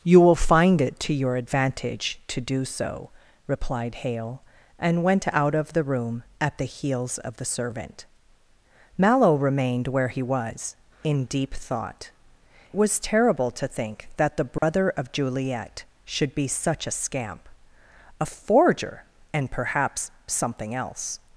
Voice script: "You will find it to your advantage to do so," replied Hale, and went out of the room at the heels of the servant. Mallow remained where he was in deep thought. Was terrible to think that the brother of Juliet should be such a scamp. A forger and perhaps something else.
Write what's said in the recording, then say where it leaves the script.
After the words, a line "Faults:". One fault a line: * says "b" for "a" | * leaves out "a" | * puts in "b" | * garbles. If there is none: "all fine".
"You will find it to your advantage to do so," replied Hale, and went out of the room at the heels of the servant. Mallow remained where he was in deep thought. Was terrible to think that the brother of Juliet should be such a scamp. A forger and perhaps something else.
Faults:
all fine